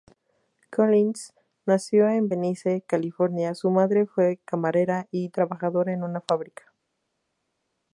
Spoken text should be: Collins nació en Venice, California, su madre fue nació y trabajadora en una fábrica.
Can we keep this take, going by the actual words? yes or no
no